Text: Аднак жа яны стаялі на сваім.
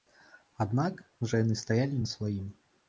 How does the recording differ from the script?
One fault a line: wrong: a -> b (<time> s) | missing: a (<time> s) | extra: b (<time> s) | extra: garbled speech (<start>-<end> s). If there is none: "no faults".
no faults